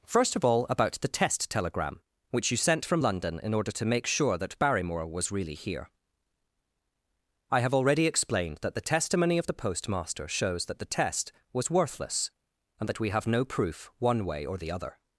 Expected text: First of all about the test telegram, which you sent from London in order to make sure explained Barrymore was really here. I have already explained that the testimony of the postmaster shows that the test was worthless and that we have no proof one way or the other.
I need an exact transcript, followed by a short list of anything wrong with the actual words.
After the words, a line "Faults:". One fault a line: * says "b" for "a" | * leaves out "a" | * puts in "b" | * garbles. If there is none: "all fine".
First of all about the test telegram, which you sent from London in order to make sure that Barrymore was really here. I have already explained that the testimony of the postmaster shows that the test was worthless and that we have no proof one way or the other.
Faults:
* says "that" for "explained"